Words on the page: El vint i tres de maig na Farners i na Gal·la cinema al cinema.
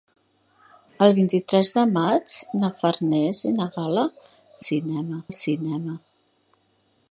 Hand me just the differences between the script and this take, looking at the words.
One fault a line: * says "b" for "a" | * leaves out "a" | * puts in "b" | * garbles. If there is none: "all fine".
all fine